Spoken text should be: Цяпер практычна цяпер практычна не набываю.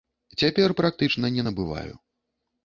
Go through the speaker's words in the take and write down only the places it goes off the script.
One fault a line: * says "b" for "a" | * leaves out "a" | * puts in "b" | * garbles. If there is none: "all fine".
* leaves out "цяпер практычна"